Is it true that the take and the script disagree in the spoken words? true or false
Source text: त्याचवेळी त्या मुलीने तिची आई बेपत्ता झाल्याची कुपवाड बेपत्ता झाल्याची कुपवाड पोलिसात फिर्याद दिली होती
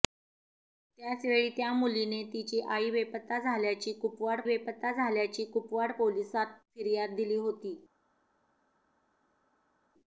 false